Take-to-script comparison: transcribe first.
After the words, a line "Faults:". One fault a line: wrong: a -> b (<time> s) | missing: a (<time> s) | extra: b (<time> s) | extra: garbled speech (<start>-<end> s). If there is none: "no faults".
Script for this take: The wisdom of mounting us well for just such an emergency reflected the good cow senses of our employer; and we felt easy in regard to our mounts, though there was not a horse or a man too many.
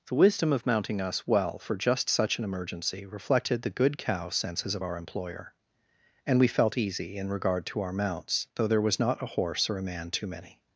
The wisdom of mounting us well for just such an emergency reflected the good cow senses of our employer; and we felt easy in regard to our mounts, though there was not a horse or a man too many.
Faults:
no faults